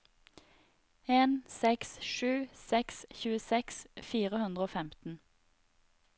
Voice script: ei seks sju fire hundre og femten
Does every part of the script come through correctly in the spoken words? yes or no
no